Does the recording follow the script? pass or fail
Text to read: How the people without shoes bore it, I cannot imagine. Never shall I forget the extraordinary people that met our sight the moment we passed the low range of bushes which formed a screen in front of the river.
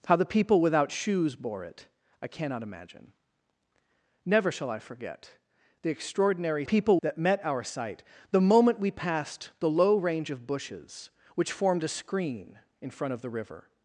pass